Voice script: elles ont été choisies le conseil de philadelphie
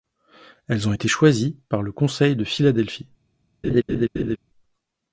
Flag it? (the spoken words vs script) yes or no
yes